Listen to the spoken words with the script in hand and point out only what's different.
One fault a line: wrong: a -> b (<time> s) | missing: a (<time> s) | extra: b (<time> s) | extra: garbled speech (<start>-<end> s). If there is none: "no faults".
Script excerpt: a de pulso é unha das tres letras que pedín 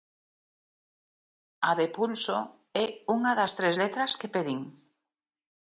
no faults